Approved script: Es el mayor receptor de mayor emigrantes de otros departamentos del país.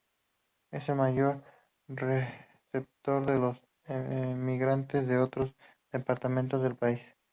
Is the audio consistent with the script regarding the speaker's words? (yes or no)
no